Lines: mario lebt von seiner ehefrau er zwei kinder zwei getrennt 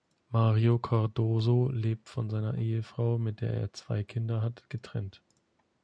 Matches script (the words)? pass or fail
fail